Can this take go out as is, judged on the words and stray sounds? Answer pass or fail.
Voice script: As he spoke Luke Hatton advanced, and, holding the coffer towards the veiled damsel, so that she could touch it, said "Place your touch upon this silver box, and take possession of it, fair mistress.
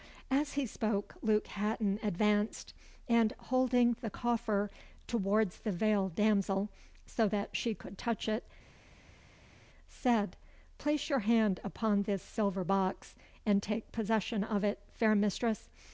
fail